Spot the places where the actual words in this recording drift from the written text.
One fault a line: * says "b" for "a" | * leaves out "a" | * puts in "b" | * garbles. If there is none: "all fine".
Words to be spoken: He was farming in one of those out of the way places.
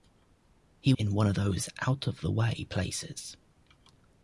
* leaves out "was farming"